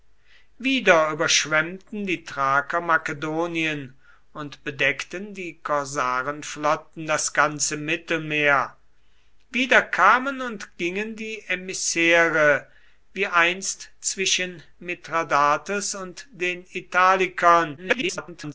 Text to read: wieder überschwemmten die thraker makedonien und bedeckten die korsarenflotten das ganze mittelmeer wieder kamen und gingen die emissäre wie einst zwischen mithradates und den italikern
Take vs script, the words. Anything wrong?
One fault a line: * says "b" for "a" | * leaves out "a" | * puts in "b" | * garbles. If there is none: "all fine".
* garbles